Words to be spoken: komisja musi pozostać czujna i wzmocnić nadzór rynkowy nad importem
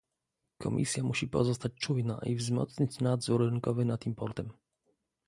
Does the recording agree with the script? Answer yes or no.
yes